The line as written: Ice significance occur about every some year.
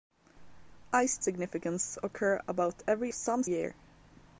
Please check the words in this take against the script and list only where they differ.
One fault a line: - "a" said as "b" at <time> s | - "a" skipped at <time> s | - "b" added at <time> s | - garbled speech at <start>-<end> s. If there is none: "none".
none